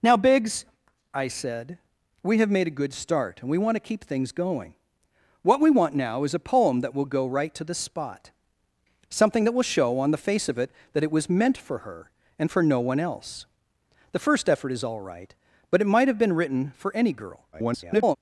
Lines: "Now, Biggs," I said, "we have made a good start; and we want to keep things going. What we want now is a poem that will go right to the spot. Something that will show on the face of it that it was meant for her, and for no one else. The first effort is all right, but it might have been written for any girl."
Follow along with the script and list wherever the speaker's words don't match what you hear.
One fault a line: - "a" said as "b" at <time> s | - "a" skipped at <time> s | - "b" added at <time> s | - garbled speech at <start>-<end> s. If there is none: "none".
- garbled speech at 17.5-18.2 s